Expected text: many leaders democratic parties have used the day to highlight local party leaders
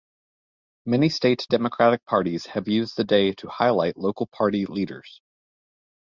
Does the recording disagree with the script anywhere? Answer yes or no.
yes